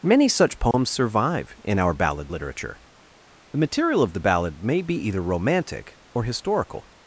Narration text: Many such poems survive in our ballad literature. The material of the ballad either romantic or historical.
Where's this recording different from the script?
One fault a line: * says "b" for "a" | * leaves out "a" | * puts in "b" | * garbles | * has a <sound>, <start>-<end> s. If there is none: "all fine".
* has a dropout, 0.7-0.7 s
* puts in "may be"